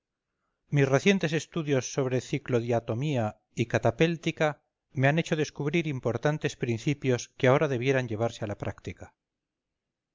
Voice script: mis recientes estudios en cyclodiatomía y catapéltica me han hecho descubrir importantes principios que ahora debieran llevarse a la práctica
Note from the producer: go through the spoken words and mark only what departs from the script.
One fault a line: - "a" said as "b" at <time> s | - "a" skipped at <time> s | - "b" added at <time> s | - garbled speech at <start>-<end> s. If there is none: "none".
- "en" said as "sobre" at 1.9 s